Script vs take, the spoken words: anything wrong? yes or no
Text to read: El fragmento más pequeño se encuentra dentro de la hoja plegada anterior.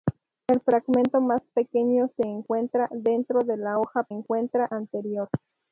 yes